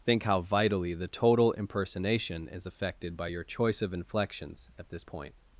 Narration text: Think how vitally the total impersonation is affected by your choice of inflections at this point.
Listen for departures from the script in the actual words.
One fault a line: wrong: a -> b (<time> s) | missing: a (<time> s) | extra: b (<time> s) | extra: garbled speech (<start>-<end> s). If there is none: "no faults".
no faults